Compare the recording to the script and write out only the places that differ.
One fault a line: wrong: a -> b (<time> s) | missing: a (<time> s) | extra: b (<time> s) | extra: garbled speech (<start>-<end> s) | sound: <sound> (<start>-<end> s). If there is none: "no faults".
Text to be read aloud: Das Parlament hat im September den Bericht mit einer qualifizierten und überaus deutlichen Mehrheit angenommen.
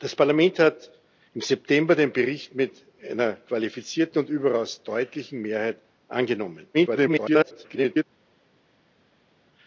extra: garbled speech (6.7-8.0 s)